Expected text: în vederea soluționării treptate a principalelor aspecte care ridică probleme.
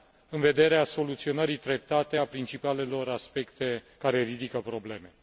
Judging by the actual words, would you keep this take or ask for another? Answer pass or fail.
pass